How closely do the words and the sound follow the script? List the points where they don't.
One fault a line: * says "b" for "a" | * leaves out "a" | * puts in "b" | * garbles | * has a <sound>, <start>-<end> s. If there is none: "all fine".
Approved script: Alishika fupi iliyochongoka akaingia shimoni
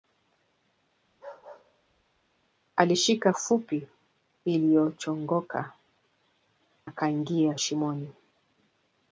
* has a bark, 1.1-2.5 s